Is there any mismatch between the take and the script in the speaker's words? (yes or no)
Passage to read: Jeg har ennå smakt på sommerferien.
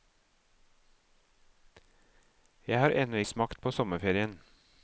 no